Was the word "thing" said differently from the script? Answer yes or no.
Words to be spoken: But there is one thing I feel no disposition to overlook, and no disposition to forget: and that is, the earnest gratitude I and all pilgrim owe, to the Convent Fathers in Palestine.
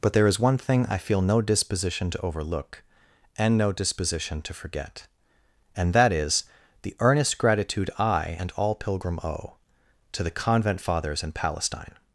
no